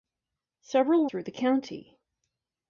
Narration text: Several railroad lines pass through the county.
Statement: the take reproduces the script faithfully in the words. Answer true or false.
false